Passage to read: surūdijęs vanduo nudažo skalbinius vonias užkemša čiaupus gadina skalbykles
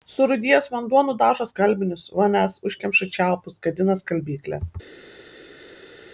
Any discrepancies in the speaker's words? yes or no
no